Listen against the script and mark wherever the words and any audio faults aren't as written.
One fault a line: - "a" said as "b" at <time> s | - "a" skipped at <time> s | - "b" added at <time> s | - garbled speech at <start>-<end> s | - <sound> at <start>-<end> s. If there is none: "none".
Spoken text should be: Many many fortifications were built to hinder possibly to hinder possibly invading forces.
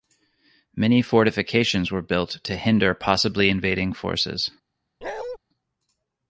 - "many" skipped at 1.0 s
- "to hinder possibly" skipped at 3.5 s
- bark at 5.0-5.4 s